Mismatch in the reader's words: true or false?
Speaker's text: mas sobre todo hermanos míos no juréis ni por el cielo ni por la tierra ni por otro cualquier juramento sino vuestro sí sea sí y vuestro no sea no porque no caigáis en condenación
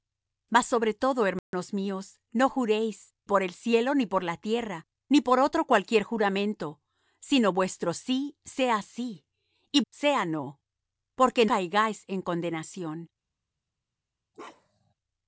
true